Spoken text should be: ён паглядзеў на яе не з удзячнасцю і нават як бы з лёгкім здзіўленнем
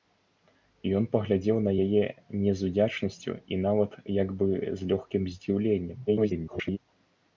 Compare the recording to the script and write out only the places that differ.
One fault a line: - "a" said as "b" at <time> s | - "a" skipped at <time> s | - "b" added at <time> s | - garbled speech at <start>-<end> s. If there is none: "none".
- garbled speech at 6.1-6.8 s